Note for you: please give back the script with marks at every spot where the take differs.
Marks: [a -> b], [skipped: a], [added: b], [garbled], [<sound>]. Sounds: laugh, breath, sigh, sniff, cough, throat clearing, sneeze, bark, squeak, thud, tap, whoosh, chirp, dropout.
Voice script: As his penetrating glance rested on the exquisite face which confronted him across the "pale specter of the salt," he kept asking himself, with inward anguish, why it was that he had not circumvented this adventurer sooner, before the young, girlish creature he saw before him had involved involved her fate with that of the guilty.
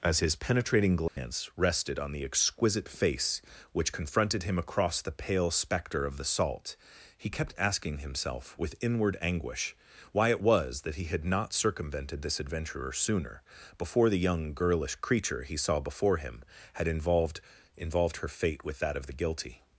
As his penetrating glance [dropout] rested on the exquisite face which confronted him across the "pale specter of the salt," he kept asking himself, with inward anguish, why it was that he had not circumvented this adventurer sooner, before the young, girlish creature he saw before him had involved involved her fate with that of the guilty.